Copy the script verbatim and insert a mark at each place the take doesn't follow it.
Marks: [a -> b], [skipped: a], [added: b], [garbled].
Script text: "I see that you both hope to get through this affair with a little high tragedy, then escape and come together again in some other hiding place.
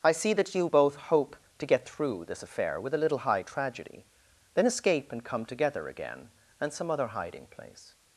"I see that you both hope to get through this affair with a little high tragedy, then escape and come together again [in -> and] some other hiding place.